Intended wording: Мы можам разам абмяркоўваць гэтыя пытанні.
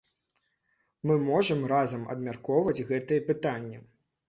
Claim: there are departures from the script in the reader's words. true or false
false